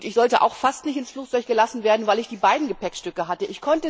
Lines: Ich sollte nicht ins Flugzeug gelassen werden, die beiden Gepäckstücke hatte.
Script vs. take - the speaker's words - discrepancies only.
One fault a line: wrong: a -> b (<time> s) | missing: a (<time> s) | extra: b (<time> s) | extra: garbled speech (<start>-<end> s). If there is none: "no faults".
extra: auch fast (0.4 s)
extra: weil ich (2.1 s)